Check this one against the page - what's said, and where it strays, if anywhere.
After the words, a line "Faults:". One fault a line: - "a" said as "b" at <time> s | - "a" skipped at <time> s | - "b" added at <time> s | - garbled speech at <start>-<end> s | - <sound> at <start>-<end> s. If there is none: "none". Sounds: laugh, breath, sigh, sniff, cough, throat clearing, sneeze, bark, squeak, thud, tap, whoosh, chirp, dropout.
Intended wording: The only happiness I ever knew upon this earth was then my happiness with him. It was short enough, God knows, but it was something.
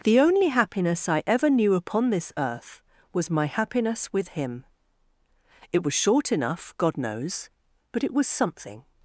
The only happiness I ever knew upon this earth was my happiness with him. It was short enough, God knows, but it was something.
Faults:
- "then" skipped at 3.3 s